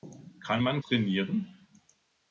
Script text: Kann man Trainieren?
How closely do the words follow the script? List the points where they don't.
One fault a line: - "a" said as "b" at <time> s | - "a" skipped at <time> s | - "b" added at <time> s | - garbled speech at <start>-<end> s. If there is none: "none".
none